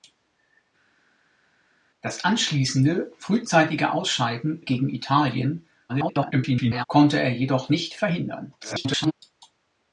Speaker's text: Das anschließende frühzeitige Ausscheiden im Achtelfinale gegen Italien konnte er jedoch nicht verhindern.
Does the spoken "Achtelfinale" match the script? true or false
false